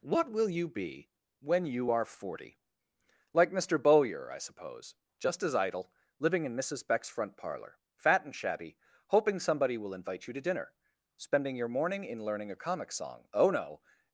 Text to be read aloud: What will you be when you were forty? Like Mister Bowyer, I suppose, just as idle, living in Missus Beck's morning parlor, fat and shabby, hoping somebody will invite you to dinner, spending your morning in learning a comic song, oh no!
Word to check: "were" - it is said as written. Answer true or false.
false